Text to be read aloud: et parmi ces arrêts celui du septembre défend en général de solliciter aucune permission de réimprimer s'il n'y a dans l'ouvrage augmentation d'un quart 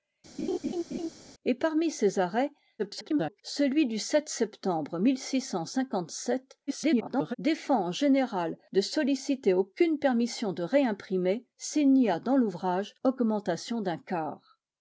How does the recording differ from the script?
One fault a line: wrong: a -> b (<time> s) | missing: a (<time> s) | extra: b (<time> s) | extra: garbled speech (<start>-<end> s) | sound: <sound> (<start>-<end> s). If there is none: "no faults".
sound: laugh (0.4-1.1 s)
extra: garbled speech (2.8-3.4 s)
extra: garbled speech (6.7-7.4 s)